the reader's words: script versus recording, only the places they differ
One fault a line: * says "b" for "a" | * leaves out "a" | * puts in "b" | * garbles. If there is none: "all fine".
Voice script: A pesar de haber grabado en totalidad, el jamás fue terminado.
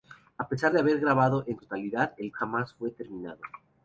all fine